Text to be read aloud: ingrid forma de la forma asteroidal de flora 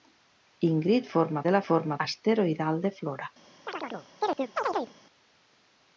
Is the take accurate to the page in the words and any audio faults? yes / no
no